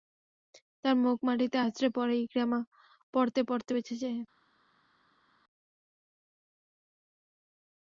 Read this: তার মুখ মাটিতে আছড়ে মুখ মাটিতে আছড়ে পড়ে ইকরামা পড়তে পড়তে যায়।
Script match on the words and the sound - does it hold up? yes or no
no